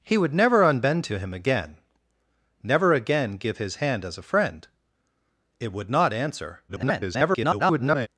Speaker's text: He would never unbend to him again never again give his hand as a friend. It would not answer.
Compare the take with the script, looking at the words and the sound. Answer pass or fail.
fail